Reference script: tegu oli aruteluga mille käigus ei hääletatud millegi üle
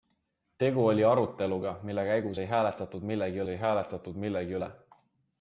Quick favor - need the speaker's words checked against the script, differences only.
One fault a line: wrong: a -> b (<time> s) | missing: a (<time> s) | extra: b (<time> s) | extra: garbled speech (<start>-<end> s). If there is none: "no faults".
extra: ei hääletatud millegi (3.5 s)